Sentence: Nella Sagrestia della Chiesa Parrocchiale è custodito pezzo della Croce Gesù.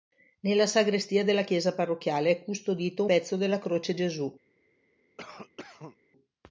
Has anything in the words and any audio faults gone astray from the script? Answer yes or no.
yes